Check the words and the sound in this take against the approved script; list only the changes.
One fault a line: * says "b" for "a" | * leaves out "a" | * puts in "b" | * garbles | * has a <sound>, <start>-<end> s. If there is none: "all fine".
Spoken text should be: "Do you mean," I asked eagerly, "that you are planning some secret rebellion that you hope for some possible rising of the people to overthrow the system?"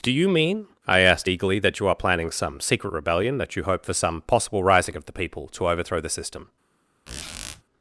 * has a squeak, 7.1-7.6 s